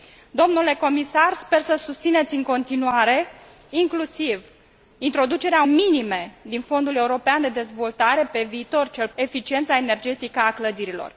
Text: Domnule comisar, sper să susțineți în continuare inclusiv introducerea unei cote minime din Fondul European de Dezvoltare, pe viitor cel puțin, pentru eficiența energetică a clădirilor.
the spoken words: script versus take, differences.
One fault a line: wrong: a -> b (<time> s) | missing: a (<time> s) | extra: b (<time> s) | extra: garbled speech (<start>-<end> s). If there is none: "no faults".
missing: unei cote (5.6 s)
missing: puțin pentru (9.1 s)